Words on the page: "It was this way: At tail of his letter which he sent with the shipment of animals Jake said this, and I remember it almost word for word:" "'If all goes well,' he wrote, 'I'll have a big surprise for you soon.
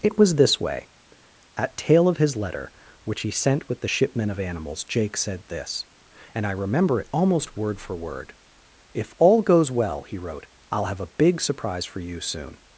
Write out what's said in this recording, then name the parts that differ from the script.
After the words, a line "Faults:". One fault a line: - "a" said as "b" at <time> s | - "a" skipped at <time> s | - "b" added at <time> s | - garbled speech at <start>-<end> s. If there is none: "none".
"It was this way: At tail of his letter which he sent with the shipment of animals Jake said this, and I remember it almost word for word:" "'If all goes well,' he wrote, 'I'll have a big surprise for you soon.
Faults:
none